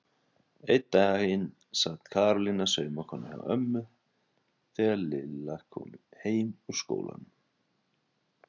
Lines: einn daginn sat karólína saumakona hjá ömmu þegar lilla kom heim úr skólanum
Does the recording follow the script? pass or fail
pass